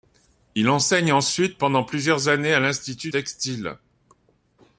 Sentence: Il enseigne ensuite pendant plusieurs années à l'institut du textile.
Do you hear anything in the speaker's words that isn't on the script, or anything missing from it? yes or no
yes